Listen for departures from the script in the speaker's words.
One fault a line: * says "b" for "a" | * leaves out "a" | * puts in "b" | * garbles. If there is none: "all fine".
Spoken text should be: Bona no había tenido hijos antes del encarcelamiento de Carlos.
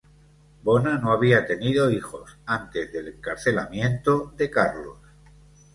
all fine